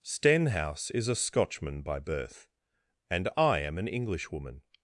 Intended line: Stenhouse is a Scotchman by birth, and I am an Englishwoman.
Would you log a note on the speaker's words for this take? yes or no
no